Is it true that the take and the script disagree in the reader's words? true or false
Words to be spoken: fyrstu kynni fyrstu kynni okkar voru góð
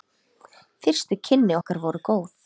true